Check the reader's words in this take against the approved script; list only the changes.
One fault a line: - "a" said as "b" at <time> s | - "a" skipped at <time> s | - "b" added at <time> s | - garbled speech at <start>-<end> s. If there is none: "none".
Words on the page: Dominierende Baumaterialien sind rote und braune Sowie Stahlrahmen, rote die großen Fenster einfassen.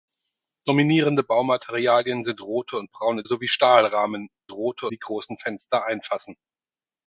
none